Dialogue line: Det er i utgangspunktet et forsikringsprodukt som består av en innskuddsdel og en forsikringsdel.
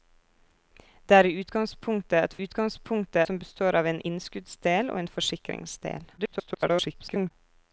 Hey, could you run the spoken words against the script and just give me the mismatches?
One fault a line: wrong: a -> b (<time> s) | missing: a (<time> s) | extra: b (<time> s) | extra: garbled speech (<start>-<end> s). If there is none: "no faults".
wrong: forsikringsprodukt -> utgangspunktet (2.4 s)
extra: garbled speech (6.2-7.3 s)